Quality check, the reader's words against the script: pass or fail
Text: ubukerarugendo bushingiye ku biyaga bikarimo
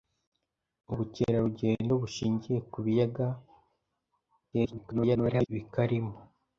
fail